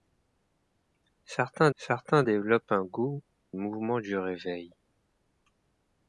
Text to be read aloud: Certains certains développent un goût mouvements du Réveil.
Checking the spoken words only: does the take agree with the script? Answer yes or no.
yes